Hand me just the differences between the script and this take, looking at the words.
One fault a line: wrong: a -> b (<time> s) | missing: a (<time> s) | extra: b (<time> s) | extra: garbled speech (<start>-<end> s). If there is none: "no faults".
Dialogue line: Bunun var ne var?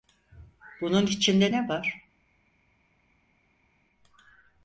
wrong: var -> içinde (1.1 s)